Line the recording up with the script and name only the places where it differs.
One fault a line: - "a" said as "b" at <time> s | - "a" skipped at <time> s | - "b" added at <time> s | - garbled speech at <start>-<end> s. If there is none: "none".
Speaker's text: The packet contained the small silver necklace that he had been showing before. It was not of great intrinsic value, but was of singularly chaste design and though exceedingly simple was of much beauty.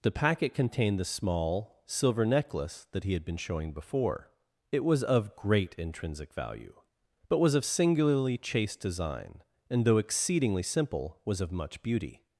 - "not" skipped at 5.0 s